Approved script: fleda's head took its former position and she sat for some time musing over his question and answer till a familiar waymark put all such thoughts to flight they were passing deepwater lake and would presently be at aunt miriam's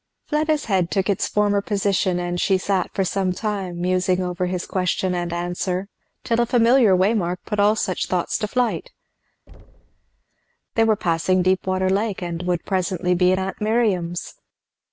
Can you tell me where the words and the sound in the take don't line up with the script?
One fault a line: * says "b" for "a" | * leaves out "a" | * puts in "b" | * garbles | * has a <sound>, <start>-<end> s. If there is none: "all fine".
* has a thud, 9.5-10.2 s